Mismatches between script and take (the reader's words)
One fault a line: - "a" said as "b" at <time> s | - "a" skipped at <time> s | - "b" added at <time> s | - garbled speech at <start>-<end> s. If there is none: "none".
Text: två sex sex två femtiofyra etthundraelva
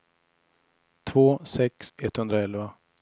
- "sex två femtiofyra" skipped at 1.9 s